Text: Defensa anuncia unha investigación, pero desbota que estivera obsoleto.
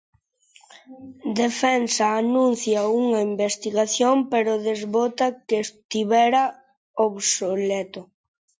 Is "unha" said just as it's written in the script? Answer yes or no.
yes